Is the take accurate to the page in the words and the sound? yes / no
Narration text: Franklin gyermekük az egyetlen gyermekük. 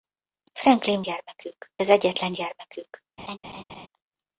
no